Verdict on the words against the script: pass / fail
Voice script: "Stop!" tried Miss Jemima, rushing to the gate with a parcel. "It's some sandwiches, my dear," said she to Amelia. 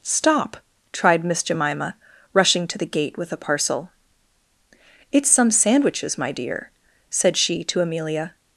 pass